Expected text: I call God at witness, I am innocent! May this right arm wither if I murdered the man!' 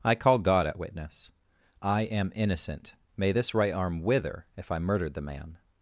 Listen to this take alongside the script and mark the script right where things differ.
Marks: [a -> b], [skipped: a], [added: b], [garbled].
I call God at witness, I am innocent! May this right arm wither if I murdered the man!'